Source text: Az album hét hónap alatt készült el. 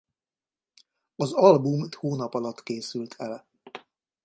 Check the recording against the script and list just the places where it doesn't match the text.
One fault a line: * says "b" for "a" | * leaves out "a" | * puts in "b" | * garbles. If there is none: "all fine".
* leaves out "hét"